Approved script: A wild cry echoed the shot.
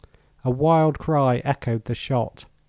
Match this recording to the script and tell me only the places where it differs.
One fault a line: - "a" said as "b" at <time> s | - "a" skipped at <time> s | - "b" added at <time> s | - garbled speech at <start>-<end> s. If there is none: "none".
none